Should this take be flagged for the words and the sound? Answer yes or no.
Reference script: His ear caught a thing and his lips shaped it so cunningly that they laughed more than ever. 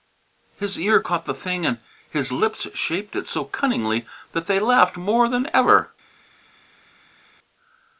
yes